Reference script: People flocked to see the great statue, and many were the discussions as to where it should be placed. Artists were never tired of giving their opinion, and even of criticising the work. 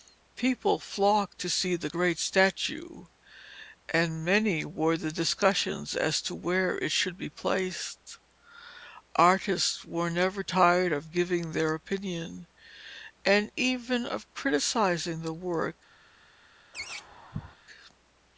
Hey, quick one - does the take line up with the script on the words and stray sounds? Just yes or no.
no